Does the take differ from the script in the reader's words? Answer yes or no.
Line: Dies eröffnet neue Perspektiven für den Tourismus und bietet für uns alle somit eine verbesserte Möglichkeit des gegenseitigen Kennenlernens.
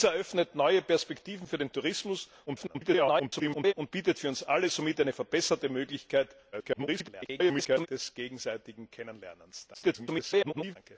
yes